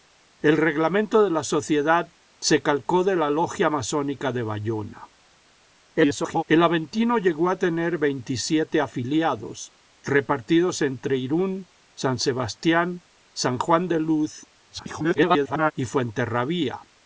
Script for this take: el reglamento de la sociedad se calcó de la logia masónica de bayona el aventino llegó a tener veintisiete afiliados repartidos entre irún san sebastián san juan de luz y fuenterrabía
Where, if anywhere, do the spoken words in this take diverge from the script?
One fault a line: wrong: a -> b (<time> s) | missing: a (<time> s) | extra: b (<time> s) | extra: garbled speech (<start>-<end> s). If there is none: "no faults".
extra: garbled speech (5.9-6.4 s)
extra: garbled speech (14.7-15.7 s)